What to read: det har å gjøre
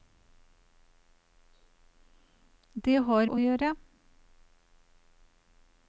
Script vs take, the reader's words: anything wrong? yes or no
no